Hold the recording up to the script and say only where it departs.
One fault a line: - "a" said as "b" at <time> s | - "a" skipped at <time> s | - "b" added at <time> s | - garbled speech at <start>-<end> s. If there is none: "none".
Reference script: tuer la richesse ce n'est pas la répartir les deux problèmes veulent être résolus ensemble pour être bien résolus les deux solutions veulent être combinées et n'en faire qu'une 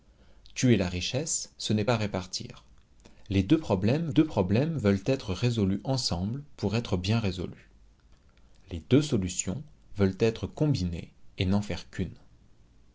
- "pas" skipped at 1.9 s
- "deux problèmes" added at 4.1 s